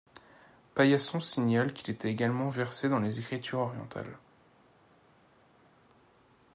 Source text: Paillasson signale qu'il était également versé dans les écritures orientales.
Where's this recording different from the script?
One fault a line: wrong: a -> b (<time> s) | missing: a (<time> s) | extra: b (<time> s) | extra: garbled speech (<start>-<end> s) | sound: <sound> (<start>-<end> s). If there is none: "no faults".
no faults